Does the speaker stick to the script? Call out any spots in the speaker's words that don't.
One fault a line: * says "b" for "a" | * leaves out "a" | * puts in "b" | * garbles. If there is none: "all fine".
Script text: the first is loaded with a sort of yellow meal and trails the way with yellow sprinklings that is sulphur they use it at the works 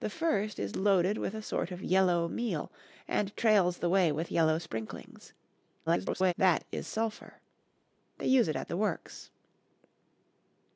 * garbles